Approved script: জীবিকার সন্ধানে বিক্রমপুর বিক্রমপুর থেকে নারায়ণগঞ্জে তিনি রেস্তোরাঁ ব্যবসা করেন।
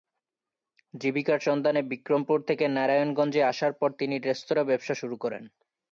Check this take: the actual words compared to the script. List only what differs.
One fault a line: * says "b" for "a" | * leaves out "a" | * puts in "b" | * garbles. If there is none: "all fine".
* leaves out "বিক্রমপুর"
* puts in "আসার পর"
* puts in "শুরু"